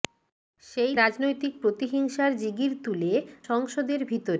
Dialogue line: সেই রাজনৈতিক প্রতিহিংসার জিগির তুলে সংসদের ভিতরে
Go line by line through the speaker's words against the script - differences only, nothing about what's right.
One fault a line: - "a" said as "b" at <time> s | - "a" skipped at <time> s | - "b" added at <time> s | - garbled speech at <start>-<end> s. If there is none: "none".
none